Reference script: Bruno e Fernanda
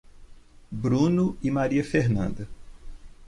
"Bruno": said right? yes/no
yes